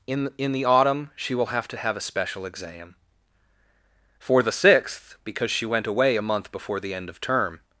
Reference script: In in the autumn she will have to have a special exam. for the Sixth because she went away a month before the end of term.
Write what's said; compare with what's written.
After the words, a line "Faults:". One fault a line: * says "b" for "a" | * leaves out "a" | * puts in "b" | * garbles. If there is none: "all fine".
In in the autumn she will have to have a special exam. for the Sixth because she went away a month before the end of term.
Faults:
all fine